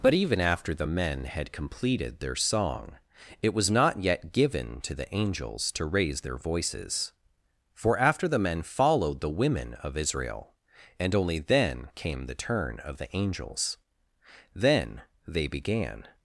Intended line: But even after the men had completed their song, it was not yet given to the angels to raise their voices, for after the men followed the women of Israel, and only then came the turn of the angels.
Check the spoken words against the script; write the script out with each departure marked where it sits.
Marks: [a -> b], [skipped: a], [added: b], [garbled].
But even after the men had completed their song, it was not yet given to the angels to raise their voices, for after the men followed the women of Israel, and only then came the turn of the angels. [added: Then they began]